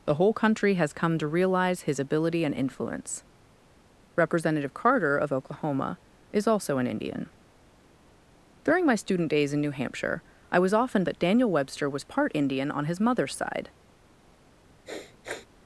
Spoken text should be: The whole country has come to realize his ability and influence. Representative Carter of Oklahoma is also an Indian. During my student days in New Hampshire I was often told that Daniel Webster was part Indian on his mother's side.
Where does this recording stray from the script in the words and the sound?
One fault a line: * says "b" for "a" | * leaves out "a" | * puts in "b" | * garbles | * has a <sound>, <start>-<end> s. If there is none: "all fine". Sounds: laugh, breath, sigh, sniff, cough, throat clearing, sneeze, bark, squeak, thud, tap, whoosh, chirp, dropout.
* leaves out "told"
* has a sniff, 14.9-15.5 s